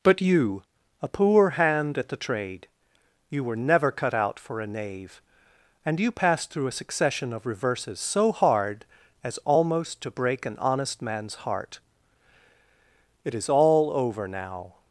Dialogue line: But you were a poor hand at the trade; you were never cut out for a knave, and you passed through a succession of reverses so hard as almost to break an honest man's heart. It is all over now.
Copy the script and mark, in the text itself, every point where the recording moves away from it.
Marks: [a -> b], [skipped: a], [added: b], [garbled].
But you [skipped: were] a poor hand at the trade; you were never cut out for a knave, and you passed through a succession of reverses so hard as almost to break an honest man's heart. It is all over now.